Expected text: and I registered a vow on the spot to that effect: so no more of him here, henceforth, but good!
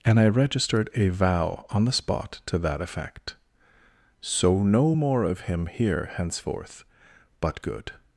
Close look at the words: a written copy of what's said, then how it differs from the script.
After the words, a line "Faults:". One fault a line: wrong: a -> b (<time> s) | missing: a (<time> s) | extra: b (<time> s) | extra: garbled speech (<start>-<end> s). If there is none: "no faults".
and I registered a vow on the spot to that effect: so no more of him here, henceforth, but good!
Faults:
no faults